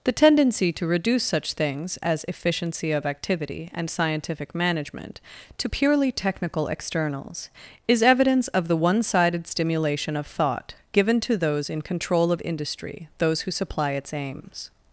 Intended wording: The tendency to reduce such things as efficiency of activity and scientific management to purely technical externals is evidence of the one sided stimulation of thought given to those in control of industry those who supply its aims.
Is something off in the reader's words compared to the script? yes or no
no